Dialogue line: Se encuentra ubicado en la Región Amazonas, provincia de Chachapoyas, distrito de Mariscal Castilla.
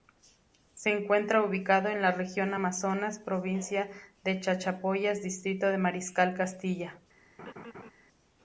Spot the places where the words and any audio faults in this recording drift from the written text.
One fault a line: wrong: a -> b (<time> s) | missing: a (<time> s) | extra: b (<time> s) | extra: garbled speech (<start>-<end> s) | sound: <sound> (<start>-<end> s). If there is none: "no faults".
sound: laugh (7.4-7.9 s)